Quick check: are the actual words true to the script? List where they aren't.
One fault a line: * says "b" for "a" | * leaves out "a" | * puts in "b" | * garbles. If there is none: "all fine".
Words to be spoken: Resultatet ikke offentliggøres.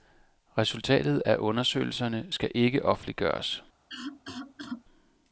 * puts in "af undersøgelserne skal"